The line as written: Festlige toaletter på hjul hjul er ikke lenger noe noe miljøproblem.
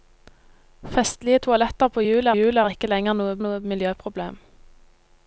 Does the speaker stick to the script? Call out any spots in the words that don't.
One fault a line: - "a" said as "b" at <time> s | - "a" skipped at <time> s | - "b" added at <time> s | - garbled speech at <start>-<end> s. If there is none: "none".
none